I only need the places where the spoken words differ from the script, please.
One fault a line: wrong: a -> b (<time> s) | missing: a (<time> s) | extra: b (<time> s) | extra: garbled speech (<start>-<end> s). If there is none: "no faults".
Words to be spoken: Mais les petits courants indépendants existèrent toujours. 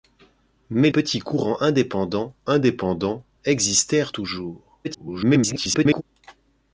missing: les (0.9 s)
extra: indépendants (2.5 s)
extra: garbled speech (4.8-6.0 s)